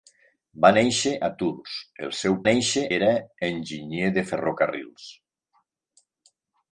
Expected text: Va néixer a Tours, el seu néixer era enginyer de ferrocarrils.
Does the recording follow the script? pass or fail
pass